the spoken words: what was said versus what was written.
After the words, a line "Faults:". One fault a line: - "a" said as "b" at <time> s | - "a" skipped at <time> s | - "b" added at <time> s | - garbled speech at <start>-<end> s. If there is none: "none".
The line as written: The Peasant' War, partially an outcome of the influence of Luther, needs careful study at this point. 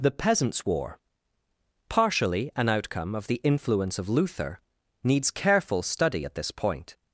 The Peasants' War, partially an outcome of the influence of Luther, needs careful study at this point.
Faults:
- "Peasant" said as "Peasants" at 0.1 s